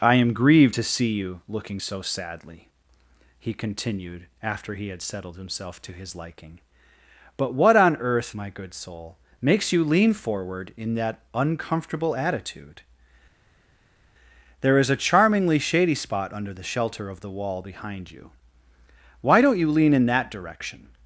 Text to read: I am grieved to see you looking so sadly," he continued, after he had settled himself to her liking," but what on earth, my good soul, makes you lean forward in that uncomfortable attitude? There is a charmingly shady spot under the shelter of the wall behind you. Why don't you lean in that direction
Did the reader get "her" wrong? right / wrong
wrong